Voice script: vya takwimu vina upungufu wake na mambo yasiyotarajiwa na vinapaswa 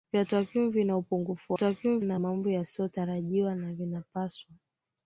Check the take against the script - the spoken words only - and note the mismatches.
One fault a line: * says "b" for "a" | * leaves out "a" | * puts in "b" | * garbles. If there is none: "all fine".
* says "takwimu" for "wake"